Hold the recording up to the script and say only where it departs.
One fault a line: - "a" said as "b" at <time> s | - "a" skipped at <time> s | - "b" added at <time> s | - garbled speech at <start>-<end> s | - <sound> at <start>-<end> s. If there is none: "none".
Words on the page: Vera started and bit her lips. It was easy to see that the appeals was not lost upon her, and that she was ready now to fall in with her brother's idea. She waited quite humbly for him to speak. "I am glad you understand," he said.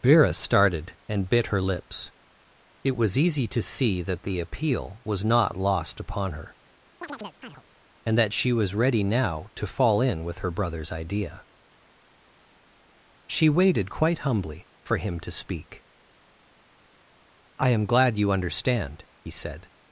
- "appeals" said as "appeal" at 4.4 s
- chirp at 7.0-7.6 s